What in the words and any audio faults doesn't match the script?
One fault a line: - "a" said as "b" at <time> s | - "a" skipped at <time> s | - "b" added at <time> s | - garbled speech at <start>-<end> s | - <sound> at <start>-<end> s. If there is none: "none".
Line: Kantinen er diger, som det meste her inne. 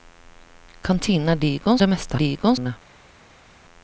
- "som" skipped at 1.8 s
- "her" said as "diger" at 2.1 s